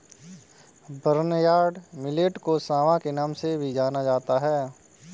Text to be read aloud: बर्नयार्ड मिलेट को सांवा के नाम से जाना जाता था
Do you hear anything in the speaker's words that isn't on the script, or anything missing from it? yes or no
yes